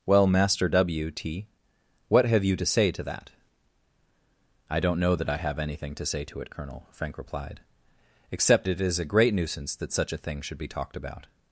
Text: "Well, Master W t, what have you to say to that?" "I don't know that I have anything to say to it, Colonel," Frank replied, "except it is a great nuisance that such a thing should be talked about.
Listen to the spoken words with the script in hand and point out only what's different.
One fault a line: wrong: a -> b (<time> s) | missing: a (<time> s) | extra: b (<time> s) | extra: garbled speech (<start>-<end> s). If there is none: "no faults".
no faults